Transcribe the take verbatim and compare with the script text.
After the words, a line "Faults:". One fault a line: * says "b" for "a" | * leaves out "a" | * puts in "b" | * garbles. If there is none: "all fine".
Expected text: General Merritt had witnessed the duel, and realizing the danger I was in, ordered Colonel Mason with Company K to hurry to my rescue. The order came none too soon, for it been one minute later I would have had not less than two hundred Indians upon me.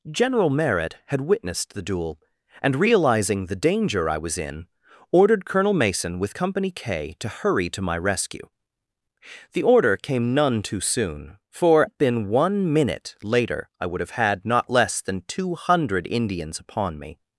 General Merritt had witnessed the duel, and realizing the danger I was in, ordered Colonel Mason with Company K to hurry to my rescue. The order came none too soon, for it been one minute later I would have had not less than two hundred Indians upon me.
Faults:
all fine